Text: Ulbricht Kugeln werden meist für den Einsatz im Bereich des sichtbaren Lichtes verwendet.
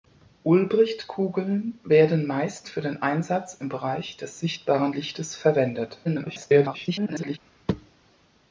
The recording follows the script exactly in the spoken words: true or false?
false